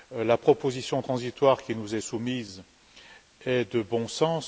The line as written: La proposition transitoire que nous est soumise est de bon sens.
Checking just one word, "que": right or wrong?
wrong